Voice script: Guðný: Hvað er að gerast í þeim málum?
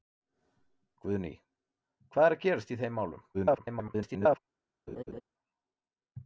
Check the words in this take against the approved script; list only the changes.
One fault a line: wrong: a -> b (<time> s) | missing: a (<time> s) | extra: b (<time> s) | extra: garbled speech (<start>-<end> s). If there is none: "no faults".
extra: garbled speech (3.3-4.4 s)